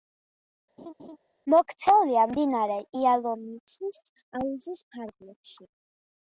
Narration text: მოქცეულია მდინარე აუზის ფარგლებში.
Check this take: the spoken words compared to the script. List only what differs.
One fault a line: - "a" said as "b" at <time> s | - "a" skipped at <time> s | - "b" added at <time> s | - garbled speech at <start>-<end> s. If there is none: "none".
- "იალომიცის" added at 3.0 s